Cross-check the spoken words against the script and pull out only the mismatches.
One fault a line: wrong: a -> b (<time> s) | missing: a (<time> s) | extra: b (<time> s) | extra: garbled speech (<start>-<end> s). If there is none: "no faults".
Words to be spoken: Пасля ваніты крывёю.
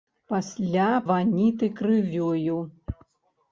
no faults